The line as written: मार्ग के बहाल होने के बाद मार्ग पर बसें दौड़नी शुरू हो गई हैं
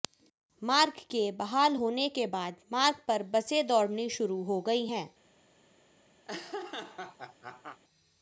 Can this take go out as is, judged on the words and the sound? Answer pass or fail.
fail